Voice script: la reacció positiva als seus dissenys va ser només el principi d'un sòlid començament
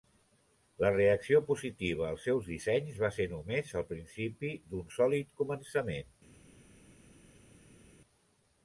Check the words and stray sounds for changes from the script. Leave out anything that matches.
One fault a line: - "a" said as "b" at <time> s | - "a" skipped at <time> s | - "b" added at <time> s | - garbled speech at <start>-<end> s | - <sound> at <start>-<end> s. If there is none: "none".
none